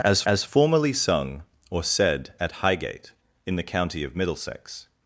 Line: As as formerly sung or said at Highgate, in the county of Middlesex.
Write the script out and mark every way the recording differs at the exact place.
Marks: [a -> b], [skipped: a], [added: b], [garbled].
As as formerly sung or said at Highgate, in the county of Middlesex.